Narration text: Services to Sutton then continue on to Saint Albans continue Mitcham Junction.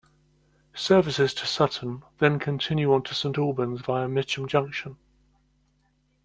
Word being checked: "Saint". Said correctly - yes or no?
yes